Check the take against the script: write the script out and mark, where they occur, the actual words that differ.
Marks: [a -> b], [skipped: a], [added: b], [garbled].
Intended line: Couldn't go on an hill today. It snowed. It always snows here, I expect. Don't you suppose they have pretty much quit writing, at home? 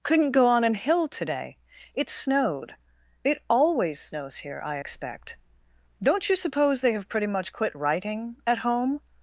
Couldn't go on an hill today. It snowed. It always snows here, I expect. Don't you suppose they have pretty much quit writing, at home?